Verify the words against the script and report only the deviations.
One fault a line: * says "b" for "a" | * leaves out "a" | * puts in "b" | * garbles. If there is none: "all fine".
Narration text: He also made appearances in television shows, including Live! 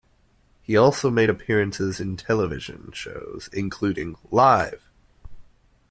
all fine